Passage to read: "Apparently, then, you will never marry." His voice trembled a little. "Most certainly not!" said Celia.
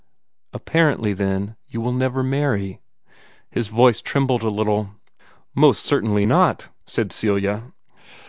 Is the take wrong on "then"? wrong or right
right